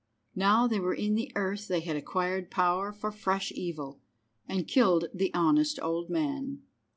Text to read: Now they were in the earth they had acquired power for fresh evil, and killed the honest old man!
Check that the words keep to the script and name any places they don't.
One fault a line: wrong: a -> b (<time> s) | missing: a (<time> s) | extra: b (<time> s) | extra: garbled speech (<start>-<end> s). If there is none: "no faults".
no faults